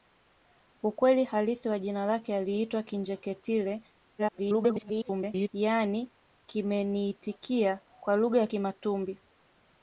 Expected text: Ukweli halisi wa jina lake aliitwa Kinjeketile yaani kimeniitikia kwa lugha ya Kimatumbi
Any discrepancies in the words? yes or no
yes